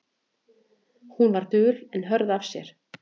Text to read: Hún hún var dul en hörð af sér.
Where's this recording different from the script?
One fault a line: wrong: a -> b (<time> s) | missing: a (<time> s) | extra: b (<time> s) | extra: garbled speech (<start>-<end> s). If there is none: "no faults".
missing: hún (1.3 s)